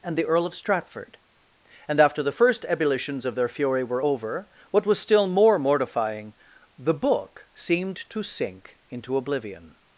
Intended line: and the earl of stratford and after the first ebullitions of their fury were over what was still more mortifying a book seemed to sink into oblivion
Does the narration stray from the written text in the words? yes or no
yes